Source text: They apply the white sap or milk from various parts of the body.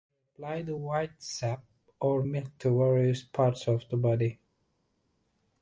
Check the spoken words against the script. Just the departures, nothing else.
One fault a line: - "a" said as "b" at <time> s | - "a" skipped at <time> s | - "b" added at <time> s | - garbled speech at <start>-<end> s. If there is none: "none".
- "from" said as "to" at 2.6 s